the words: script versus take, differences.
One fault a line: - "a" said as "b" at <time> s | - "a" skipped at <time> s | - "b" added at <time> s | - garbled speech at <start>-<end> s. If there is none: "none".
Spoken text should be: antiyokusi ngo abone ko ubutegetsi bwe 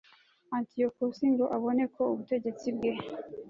none